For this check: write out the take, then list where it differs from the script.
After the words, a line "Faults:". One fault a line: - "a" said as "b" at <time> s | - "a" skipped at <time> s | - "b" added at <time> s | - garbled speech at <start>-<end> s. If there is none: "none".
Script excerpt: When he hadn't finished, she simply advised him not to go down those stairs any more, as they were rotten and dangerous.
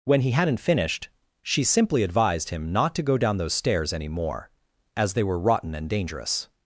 When he hadn't finished, she simply advised him not to go down those stairs any more, as they were rotten and dangerous.
Faults:
none